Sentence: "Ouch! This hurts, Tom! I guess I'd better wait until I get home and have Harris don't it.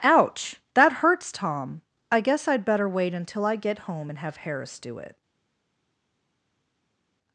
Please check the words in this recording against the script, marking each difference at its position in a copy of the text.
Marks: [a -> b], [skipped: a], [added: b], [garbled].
"Ouch! [This -> That] hurts, Tom! I guess I'd better wait until I get home and have Harris [don't -> do] it.